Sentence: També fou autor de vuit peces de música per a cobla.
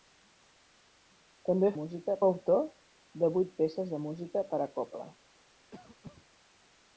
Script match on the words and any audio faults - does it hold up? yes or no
no